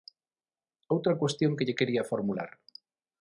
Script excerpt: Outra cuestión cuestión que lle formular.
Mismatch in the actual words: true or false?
true